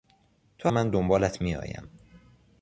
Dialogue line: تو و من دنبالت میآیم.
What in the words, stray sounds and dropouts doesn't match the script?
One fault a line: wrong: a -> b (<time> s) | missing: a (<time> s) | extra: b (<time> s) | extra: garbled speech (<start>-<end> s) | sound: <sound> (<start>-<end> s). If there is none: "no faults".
no faults